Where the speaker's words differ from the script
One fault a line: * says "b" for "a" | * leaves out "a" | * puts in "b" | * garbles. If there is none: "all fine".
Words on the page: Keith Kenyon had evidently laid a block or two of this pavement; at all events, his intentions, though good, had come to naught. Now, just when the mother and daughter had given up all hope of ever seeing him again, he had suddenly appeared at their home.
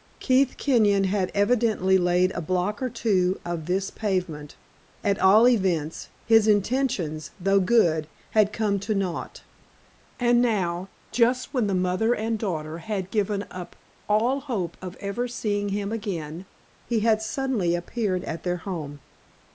* puts in "And"